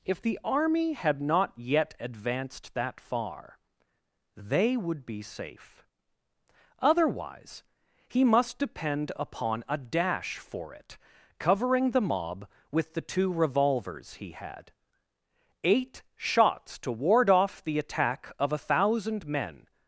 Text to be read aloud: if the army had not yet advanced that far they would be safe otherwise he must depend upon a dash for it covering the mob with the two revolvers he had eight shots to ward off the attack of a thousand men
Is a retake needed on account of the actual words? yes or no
no